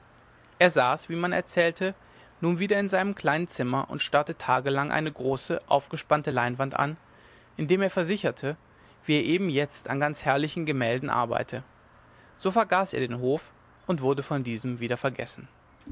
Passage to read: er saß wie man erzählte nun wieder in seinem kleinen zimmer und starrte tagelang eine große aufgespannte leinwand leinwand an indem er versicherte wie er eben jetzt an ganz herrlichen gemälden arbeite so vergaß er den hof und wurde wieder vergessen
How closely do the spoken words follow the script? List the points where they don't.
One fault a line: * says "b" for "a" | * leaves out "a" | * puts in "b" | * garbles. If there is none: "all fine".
* leaves out "leinwand"
* puts in "von diesem"